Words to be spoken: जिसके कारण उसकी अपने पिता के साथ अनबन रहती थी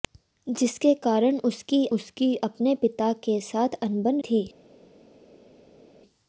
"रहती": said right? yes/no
no